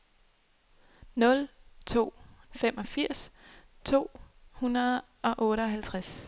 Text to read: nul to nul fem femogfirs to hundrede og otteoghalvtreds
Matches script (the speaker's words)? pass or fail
fail